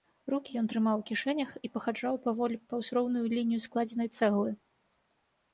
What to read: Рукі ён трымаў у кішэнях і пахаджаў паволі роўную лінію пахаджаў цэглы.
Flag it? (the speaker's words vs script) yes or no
yes